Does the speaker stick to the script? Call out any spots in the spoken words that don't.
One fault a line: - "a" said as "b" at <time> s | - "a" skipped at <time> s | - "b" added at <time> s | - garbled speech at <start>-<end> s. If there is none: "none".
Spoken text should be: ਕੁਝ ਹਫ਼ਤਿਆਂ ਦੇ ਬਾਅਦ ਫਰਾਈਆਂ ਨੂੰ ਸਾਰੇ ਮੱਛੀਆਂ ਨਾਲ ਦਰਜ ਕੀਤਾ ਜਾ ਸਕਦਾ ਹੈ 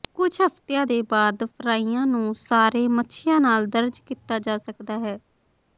none